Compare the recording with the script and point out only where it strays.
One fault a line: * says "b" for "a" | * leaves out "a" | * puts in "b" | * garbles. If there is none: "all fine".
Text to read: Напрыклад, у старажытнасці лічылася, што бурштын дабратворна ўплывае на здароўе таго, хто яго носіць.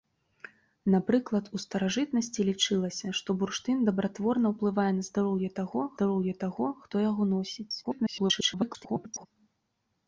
* puts in "здароўе таго"
* garbles